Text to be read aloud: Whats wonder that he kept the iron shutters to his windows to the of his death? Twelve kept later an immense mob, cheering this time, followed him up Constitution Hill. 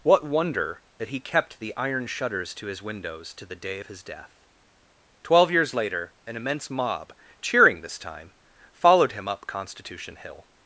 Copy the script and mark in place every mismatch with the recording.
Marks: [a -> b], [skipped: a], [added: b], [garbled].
[Whats -> What] wonder that he kept the iron shutters to his windows to the [added: day] of his death? Twelve [kept -> years] later an immense mob, cheering this time, followed him up Constitution Hill.